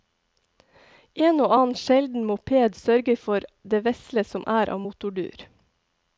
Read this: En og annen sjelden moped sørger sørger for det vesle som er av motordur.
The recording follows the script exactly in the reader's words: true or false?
false